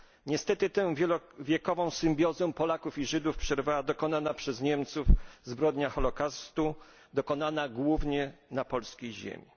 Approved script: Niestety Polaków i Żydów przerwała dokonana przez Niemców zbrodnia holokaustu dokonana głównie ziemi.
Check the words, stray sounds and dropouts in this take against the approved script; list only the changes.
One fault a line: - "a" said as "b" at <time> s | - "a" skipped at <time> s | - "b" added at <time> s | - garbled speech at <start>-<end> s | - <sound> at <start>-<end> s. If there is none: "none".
- "tę wielowiekową symbiozę" added at 0.7 s
- "na polskiej" added at 8.5 s